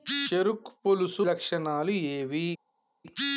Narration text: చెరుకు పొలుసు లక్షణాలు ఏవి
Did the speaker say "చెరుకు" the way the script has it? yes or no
yes